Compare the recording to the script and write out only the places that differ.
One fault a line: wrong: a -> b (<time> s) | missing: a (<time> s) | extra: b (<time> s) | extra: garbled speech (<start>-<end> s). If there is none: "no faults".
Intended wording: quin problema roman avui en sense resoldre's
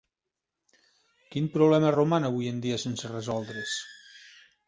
extra: dia (2.7 s)